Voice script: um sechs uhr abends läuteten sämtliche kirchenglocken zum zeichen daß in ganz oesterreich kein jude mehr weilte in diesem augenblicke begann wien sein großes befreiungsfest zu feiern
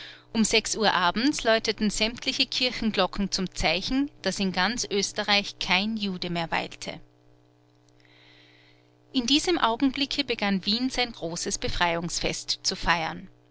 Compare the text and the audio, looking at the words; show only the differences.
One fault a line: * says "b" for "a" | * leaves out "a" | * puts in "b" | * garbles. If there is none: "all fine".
all fine